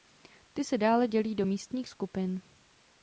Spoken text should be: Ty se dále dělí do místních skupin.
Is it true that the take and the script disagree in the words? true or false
false